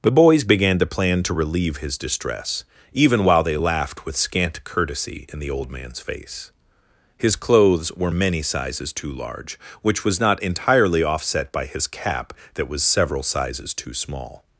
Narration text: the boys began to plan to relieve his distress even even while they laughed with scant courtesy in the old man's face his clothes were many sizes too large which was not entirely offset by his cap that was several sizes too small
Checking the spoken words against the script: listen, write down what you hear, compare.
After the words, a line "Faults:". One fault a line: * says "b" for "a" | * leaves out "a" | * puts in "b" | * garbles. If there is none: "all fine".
the boys began to plan to relieve his distress even while they laughed with scant courtesy in the old man's face his clothes were many sizes too large which was not entirely offset by his cap that was several sizes too small
Faults:
* leaves out "even"